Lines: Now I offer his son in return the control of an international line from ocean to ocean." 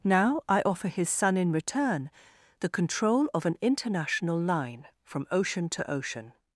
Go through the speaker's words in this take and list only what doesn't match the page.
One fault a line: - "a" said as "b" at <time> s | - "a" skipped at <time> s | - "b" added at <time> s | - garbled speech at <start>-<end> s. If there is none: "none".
none